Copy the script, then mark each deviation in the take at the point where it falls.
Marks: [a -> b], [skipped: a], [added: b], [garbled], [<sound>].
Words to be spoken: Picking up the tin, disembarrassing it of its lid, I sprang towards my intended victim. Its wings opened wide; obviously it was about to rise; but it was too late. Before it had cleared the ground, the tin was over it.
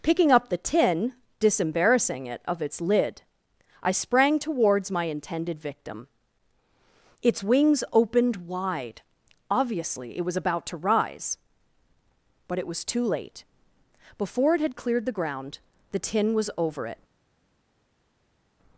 Picking up the tin, disembarrassing it of its lid, I sprang towards my intended victim. Its wings opened wide; obviously it was about to rise; but it was too late. Before it had cleared the ground, the tin was over it.